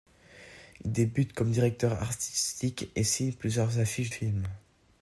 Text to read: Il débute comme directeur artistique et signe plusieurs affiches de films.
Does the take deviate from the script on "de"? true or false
true